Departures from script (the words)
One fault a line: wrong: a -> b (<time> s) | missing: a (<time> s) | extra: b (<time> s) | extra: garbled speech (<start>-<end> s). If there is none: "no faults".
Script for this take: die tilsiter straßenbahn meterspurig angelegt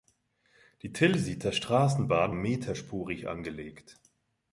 no faults